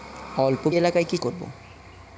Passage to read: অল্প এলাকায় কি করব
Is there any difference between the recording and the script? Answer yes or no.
no